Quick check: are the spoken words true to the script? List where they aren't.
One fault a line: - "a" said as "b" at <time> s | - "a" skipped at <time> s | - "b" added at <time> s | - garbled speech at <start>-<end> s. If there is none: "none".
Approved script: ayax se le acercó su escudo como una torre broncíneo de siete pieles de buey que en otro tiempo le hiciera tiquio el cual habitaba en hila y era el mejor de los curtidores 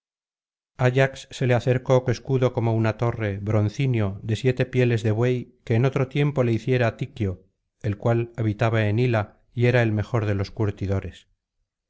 none